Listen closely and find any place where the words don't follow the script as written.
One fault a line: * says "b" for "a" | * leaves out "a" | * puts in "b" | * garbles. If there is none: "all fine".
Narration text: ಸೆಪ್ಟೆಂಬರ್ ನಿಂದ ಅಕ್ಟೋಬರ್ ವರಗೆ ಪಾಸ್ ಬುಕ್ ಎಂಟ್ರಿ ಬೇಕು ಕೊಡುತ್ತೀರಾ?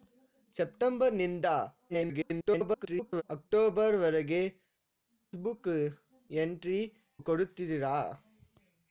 * garbles
* leaves out "ಪಾಸ್"
* leaves out "ಬೇಕು"